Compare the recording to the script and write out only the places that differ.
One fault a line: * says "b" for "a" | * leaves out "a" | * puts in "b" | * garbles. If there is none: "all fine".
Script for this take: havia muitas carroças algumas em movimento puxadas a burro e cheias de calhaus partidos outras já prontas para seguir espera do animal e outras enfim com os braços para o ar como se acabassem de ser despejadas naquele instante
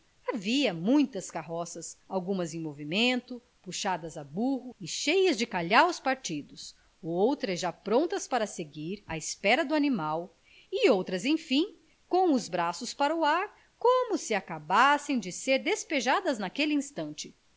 * puts in "à"